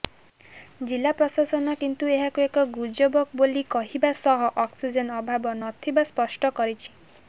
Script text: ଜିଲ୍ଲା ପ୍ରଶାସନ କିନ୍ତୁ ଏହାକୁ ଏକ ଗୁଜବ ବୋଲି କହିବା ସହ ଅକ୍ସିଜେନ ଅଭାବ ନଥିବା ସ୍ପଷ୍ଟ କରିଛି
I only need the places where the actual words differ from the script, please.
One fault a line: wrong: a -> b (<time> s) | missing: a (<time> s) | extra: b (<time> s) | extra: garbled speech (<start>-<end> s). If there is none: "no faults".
no faults